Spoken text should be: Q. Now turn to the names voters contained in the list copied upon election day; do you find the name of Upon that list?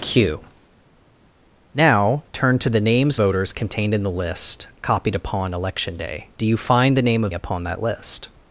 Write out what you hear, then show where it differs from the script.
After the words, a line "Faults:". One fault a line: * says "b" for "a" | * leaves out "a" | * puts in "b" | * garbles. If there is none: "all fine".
Q. Now turn to the names voters contained in the list copied upon election day; do you find the name of Upon that list?
Faults:
all fine